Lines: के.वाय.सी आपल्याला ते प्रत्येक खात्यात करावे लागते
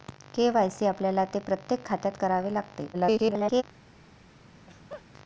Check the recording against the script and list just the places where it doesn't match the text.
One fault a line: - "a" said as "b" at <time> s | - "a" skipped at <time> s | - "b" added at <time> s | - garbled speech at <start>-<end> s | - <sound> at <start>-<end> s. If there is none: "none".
- garbled speech at 2.9-3.6 s
- laugh at 4.5-5.0 s